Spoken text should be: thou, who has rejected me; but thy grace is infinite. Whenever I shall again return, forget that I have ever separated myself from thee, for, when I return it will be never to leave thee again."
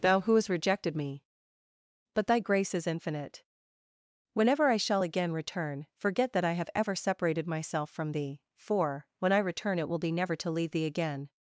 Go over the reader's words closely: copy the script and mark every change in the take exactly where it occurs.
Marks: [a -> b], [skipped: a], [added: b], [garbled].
thou, who [has -> hast] rejected me; but thy grace is infinite. Whenever I shall again return, forget that I have ever separated myself from thee, for, when I return it will be never to leave thee again."